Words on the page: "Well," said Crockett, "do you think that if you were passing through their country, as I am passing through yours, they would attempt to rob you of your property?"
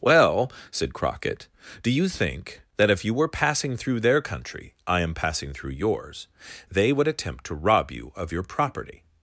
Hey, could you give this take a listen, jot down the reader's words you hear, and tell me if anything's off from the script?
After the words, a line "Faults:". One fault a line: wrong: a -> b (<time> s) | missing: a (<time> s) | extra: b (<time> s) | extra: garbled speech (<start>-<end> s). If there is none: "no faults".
"Well," said Crockett, "do you think that if you were passing through their country, I am passing through yours, they would attempt to rob you of your property?"
Faults:
missing: as (4.7 s)